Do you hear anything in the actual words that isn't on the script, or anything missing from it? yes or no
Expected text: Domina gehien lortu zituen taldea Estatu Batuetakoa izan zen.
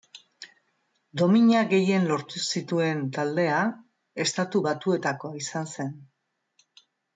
no